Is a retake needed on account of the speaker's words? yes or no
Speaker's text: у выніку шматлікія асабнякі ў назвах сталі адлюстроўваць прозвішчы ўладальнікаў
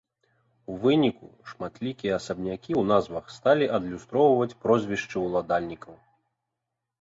no